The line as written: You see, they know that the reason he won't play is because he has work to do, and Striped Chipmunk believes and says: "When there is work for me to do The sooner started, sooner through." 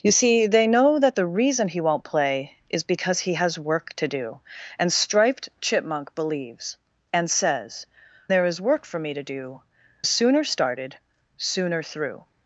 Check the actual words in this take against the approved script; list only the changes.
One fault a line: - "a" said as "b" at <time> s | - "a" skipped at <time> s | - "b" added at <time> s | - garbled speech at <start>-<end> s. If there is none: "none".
- "When" skipped at 7.8 s
- "The" skipped at 9.6 s